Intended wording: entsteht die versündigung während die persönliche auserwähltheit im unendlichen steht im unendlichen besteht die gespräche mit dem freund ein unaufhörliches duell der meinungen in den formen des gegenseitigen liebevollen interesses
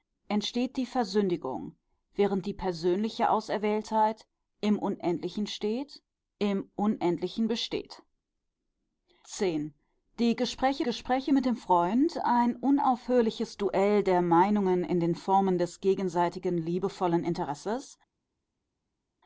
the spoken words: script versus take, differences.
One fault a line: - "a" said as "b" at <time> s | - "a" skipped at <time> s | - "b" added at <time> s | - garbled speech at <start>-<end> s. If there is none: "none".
- "gespräche" added at 10.8 s